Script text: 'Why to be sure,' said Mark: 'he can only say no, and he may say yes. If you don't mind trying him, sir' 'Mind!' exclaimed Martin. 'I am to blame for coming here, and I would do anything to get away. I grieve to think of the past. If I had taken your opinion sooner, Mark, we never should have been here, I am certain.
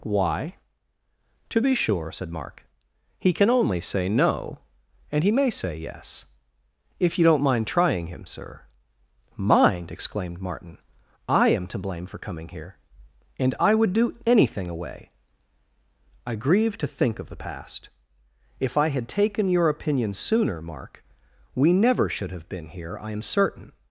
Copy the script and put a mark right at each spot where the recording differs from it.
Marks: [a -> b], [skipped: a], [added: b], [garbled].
'Why to be sure,' said Mark: 'he can only say no, and he may say yes. If you don't mind trying him, sir' 'Mind!' exclaimed Martin. 'I am to blame for coming here, and I would do anything [skipped: to get] away. I grieve to think of the past. If I had taken your opinion sooner, Mark, we never should have been here, I am certain.